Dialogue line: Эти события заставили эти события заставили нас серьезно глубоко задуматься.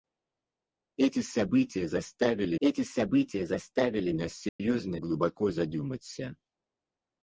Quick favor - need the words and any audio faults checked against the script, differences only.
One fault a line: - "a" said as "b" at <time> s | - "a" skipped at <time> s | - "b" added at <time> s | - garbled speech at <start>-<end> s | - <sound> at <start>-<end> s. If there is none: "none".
- dropout at 4.5-4.6 s